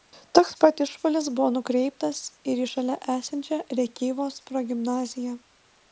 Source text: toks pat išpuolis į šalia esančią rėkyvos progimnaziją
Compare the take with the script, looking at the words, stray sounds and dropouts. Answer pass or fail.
fail